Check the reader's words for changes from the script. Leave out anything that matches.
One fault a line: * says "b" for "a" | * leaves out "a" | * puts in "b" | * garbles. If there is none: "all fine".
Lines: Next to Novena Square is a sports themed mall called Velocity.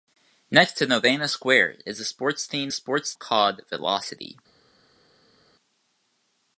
* says "sports" for "mall"